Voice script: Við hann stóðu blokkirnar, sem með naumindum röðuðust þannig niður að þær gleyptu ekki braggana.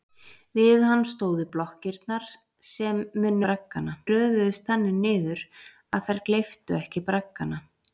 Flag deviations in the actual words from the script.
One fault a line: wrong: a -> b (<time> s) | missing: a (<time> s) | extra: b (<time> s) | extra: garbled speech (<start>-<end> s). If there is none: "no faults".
wrong: naumindum -> braggana (3.5 s)